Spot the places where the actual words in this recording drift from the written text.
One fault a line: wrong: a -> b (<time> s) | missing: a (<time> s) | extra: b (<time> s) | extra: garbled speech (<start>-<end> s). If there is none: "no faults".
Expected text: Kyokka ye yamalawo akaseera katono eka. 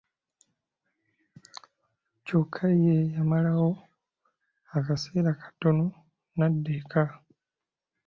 extra: n'adda (6.4 s)